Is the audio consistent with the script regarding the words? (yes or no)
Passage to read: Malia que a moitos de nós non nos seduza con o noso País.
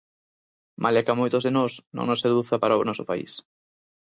no